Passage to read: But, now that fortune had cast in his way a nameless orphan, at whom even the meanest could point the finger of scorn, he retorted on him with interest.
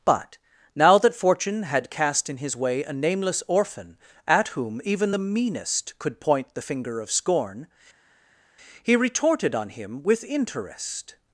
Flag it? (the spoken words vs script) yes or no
no